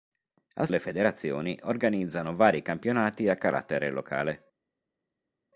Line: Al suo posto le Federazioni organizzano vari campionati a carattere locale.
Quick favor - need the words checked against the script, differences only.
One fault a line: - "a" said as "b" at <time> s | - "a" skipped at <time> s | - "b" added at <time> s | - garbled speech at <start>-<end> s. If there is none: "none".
- "suo posto" skipped at 0.7 s